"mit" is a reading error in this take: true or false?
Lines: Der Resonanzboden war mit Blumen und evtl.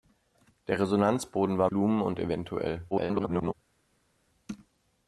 true